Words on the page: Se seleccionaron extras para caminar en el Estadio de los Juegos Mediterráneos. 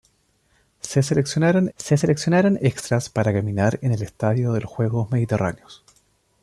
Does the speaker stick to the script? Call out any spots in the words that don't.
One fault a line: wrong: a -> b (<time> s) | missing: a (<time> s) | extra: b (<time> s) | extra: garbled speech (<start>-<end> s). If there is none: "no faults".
extra: se seleccionaron (1.8 s)